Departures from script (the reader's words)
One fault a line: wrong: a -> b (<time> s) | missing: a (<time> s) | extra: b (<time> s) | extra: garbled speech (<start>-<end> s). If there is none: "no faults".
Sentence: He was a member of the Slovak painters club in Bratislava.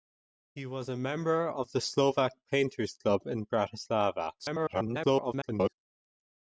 extra: garbled speech (4.4-5.7 s)